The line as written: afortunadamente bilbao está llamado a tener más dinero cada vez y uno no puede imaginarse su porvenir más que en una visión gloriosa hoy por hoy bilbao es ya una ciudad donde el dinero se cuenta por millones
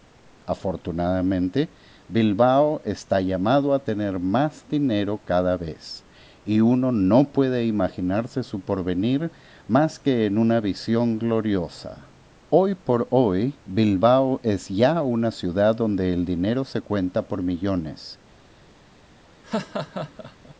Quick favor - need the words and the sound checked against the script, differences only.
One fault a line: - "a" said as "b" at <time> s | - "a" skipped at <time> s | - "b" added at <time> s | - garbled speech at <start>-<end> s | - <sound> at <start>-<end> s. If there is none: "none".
- laugh at 19.4-20.5 s